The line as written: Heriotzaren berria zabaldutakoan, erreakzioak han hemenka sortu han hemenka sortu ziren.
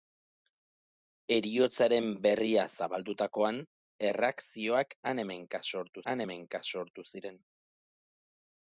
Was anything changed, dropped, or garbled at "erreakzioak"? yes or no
no